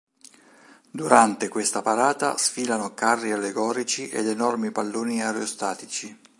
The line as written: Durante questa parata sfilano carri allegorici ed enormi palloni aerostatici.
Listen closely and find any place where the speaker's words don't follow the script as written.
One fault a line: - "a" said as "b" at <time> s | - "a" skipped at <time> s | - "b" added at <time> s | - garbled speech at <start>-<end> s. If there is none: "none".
none